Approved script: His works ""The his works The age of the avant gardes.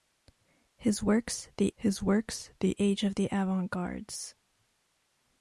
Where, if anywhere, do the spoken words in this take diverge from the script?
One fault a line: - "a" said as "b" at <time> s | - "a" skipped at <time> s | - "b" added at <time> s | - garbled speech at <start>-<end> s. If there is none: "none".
none